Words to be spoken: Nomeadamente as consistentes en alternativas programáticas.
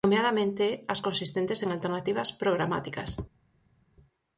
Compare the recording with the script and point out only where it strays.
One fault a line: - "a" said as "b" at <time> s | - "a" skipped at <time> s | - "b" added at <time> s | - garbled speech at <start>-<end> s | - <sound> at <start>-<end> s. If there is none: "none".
none